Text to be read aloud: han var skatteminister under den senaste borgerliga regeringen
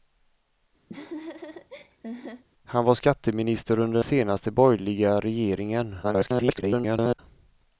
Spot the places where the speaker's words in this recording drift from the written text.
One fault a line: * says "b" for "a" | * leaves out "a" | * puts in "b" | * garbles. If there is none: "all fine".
* leaves out "den"
* garbles